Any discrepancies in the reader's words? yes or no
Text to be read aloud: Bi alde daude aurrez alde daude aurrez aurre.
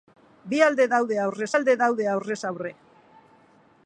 no